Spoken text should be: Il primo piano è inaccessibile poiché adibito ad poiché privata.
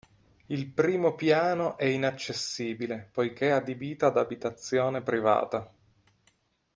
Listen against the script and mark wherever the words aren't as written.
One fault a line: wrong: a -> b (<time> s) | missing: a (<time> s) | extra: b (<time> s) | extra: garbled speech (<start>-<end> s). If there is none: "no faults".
wrong: poiché -> abitazione (4.2 s)